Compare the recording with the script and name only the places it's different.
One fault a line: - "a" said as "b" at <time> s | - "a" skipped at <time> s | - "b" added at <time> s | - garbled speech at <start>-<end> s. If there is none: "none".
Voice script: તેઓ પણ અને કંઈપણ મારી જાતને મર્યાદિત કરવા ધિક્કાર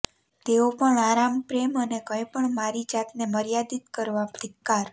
- "આરામ પ્રેમ" added at 1.0 s